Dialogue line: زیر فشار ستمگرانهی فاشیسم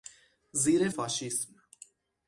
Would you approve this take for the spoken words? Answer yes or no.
no